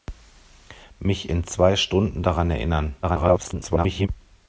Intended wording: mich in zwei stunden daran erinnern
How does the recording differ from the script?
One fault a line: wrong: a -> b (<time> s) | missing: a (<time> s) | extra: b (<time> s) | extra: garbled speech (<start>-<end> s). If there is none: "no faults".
extra: garbled speech (3.0-4.1 s)